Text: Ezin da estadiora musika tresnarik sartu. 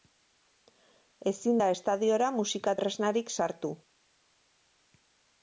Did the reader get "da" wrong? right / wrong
right